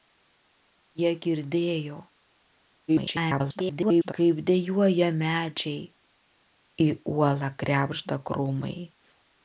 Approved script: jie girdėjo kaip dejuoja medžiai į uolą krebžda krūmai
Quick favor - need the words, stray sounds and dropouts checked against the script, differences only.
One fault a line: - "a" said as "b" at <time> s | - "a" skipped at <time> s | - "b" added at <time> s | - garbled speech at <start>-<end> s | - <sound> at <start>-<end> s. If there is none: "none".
- garbled speech at 2.9-4.1 s